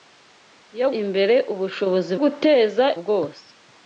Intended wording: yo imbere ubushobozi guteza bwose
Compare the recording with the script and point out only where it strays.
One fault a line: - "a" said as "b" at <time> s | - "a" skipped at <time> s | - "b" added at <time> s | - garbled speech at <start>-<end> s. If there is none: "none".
none